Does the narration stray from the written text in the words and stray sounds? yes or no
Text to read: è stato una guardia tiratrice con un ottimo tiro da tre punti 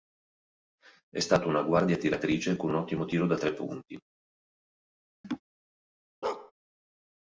yes